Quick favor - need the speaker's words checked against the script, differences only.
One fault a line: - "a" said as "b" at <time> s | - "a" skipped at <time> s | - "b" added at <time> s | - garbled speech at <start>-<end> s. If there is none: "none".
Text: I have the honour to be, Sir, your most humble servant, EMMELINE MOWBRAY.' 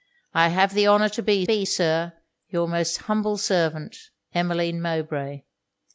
- "be" added at 1.4 s